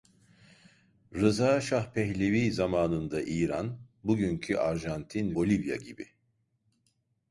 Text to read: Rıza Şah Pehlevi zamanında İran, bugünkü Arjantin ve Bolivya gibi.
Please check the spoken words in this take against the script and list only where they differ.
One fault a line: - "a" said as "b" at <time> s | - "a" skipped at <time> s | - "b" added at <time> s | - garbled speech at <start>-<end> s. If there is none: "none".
- "ve" skipped at 5.3 s